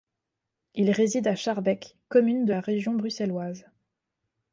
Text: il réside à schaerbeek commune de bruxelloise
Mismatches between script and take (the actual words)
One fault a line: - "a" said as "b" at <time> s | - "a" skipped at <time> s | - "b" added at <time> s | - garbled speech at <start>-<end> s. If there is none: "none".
- "la région" added at 2.5 s